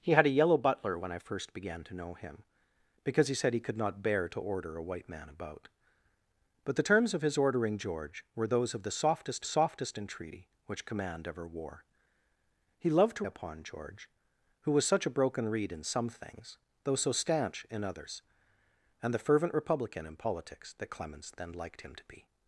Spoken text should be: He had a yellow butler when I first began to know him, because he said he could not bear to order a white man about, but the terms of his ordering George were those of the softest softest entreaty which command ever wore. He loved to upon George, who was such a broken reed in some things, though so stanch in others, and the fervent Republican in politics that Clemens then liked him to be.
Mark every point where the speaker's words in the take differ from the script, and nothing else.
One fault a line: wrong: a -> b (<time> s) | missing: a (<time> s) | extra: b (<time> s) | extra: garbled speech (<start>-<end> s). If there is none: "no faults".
no faults